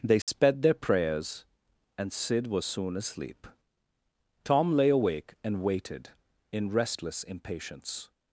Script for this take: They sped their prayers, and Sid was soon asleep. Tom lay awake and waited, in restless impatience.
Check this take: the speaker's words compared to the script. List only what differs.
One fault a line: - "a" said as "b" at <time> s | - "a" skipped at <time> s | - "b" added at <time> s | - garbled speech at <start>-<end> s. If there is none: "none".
none